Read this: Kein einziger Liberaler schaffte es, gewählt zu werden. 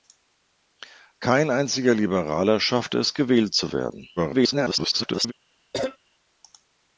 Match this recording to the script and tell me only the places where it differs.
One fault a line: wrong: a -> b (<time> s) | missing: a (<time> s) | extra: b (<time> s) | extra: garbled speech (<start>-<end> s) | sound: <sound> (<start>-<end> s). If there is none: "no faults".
extra: garbled speech (4.2-5.3 s)
sound: cough (5.7-6.0 s)